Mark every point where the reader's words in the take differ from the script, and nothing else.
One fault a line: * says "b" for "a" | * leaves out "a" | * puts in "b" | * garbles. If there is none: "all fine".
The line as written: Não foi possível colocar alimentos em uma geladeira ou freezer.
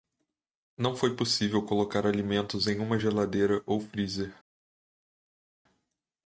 all fine